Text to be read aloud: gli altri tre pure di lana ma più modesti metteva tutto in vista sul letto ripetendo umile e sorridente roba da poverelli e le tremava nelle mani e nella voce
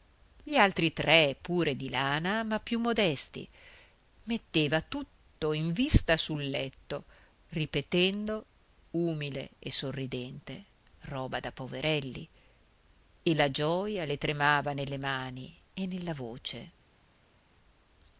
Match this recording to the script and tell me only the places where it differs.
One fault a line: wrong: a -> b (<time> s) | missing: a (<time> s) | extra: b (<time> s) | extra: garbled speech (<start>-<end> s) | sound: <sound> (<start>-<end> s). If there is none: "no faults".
extra: la gioja (13.3 s)